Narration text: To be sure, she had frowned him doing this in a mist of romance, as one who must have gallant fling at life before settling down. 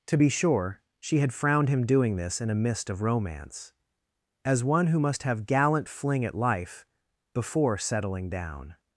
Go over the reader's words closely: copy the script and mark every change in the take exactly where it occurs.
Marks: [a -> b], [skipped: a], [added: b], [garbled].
To be sure, she had frowned him doing this in a mist of romance, as one who must have gallant fling at life before settling down.